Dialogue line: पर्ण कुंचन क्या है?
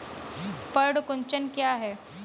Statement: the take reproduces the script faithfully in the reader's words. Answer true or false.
true